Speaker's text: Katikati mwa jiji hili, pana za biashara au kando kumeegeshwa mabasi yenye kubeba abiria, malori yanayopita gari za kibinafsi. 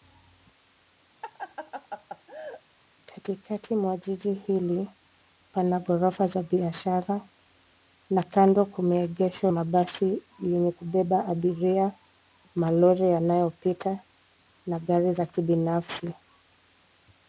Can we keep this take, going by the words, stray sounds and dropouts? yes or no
no